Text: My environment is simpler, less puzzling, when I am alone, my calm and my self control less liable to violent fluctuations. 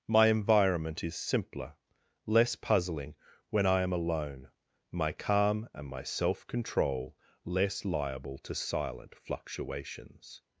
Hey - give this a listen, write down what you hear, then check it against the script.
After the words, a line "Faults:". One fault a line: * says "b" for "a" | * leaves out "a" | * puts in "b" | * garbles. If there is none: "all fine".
My environment is simpler, less puzzling, when I am alone, my calm and my self control less liable to silent fluctuations.
Faults:
* says "silent" for "violent"